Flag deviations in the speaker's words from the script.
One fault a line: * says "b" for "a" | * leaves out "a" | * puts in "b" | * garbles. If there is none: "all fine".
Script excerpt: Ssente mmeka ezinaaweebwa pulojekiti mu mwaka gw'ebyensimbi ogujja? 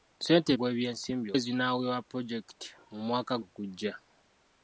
* says "gw'ebyensimbi" for "mmeka"
* leaves out "gw'ebyensimbi"